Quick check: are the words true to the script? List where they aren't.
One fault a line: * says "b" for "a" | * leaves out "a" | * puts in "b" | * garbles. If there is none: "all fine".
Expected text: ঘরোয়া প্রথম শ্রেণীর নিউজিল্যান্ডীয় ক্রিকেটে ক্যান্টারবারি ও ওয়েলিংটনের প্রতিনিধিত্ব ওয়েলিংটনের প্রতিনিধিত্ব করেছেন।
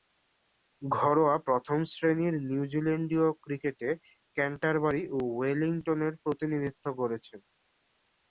* leaves out "ওয়েলিংটনের প্রতিনিধিত্ব"